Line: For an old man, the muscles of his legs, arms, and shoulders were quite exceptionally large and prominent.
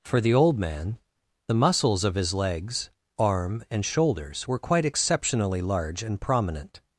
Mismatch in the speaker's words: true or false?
true